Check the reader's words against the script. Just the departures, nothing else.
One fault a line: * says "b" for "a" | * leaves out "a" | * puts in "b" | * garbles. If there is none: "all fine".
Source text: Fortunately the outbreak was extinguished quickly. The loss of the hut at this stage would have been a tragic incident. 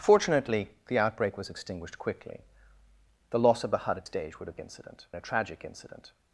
* leaves out "this"
* says "incident" for "been"